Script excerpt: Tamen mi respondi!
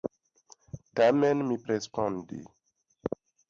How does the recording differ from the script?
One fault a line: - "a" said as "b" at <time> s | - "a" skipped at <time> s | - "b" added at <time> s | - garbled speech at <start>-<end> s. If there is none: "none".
none